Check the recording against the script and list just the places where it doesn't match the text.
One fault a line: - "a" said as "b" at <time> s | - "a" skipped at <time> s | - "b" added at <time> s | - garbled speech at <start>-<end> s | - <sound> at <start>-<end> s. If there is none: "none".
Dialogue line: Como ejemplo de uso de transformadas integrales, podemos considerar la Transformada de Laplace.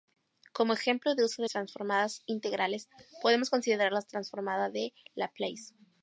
none